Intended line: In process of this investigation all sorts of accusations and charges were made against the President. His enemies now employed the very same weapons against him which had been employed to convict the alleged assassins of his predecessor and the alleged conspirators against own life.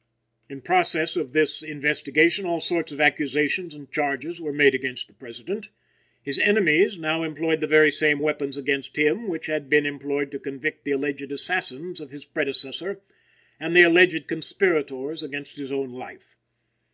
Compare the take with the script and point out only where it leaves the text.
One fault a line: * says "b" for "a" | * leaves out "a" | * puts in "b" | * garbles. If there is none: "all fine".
* puts in "his"